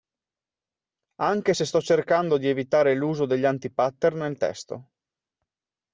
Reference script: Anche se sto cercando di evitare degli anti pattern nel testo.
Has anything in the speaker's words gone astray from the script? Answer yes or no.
yes